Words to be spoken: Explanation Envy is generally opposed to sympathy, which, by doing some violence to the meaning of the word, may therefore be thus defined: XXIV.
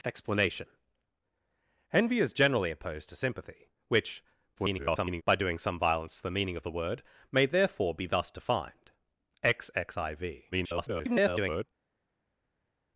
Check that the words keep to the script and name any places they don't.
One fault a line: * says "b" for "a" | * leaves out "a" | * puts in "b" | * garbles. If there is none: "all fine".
* garbles
* garbles